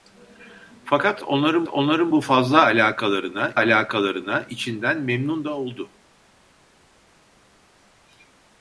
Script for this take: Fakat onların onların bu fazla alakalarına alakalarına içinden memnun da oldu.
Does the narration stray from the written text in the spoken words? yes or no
no